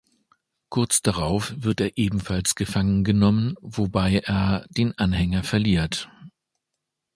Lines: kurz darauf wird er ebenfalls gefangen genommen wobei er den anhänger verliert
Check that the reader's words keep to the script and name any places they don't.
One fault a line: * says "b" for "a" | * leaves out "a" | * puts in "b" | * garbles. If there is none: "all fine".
all fine